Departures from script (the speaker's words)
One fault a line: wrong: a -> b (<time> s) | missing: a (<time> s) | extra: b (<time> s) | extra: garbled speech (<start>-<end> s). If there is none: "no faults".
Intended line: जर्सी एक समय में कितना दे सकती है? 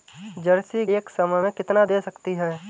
no faults